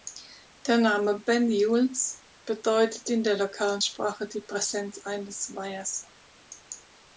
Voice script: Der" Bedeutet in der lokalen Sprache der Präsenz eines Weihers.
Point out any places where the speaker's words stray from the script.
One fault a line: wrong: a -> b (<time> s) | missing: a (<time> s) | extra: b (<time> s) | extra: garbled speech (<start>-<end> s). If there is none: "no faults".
extra: Name Banyuls (0.8 s)
wrong: der -> die (4.3 s)